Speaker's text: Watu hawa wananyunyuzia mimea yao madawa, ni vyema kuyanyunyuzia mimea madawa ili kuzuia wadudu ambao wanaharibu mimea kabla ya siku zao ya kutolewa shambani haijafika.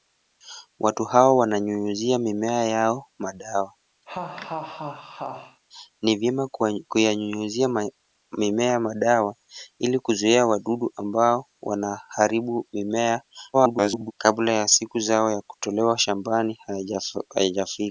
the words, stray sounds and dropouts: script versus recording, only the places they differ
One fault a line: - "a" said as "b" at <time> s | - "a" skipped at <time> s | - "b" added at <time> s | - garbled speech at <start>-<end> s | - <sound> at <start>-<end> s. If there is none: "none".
- laugh at 4.1-5.6 s
- garbled speech at 13.5-14.1 s